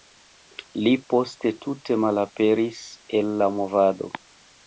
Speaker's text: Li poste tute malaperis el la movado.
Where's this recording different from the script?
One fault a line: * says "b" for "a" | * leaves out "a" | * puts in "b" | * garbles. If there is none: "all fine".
all fine